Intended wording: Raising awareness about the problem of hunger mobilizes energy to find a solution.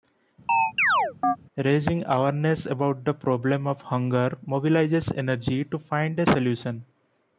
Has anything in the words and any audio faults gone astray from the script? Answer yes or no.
yes